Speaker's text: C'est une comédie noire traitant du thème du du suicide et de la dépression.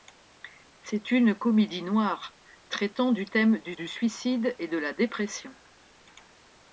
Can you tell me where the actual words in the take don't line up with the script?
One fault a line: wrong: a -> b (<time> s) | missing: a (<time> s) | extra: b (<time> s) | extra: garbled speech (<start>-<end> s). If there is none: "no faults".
no faults